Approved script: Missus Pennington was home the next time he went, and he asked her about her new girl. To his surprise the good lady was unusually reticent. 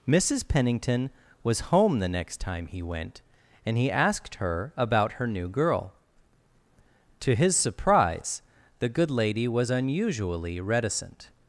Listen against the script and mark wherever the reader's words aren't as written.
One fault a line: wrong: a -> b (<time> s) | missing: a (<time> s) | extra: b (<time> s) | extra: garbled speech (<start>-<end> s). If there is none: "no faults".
no faults